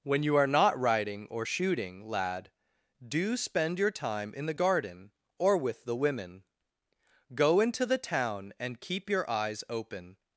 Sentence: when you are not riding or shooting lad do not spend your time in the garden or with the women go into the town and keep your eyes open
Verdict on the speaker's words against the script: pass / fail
fail